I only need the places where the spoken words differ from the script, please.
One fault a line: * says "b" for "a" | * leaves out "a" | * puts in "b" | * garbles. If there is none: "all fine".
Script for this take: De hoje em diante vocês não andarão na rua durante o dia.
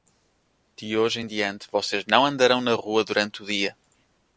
all fine